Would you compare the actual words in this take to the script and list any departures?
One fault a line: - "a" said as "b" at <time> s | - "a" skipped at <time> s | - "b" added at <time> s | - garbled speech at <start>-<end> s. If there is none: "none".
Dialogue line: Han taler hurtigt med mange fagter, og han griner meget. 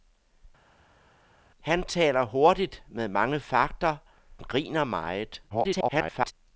- "og han" skipped at 4.0 s
- garbled speech at 5.5-6.3 s